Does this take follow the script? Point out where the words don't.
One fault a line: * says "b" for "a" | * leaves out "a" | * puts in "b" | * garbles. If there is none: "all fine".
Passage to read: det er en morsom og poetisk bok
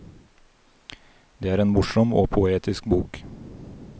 all fine